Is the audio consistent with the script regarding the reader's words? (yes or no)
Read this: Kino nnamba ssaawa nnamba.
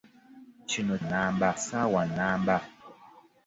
yes